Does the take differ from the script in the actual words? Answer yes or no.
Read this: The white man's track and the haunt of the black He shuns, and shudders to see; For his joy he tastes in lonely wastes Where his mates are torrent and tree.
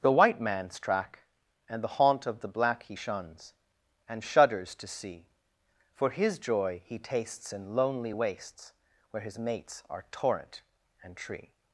no